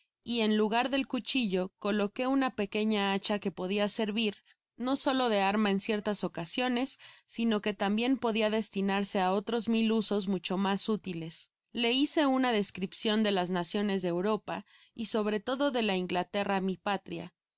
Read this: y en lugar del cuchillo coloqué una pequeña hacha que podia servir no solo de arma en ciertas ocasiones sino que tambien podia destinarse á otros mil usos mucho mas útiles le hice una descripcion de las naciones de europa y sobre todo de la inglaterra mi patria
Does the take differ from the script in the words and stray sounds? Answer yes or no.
no